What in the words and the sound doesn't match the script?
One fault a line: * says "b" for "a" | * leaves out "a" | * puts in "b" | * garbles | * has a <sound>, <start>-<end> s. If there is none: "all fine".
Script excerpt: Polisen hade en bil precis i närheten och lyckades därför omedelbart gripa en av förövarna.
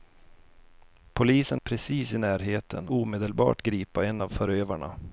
* leaves out "hade en bil"
* leaves out "och lyckades därför"